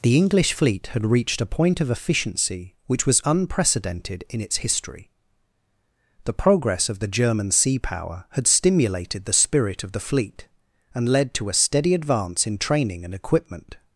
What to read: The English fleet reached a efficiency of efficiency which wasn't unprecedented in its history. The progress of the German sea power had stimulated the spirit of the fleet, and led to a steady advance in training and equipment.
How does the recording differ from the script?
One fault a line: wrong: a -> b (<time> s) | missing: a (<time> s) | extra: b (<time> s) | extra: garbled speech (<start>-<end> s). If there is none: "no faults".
extra: had (0.9 s)
wrong: efficiency -> point (1.5 s)
wrong: wasn't -> was (3.1 s)